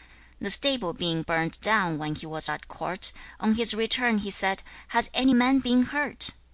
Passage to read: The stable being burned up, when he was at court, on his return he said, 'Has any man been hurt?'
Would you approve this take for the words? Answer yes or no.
no